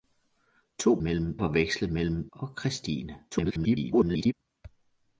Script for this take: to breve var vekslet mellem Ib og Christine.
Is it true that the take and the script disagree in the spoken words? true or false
true